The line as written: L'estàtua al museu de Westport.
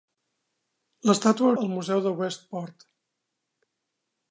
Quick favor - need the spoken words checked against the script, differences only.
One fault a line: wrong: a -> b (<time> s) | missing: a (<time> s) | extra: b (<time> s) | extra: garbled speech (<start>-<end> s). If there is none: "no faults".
no faults